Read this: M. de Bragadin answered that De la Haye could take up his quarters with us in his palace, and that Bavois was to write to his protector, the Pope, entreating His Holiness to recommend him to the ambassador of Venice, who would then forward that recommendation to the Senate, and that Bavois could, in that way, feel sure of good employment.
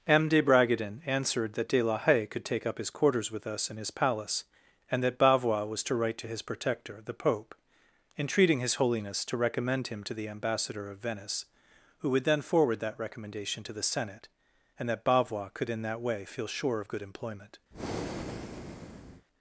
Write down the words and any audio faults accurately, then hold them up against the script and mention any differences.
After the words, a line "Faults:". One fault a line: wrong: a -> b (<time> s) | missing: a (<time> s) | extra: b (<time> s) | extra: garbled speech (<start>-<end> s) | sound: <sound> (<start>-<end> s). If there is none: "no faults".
M. de Bragadin answered that De la Haye could take up his quarters with us in his palace, and that Bavois was to write to his protector, the Pope, entreating His Holiness to recommend him to the ambassador of Venice, who would then forward that recommendation to the Senate, and that Bavois could, in that way, feel sure of good employment.
Faults:
sound: breath (17.7-19.3 s)